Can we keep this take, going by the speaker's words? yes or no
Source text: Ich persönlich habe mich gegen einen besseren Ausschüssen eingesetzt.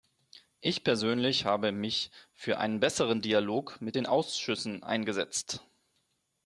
no